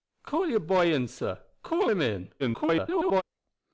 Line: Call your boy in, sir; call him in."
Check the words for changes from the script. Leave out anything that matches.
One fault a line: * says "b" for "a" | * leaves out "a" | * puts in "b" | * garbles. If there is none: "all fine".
* garbles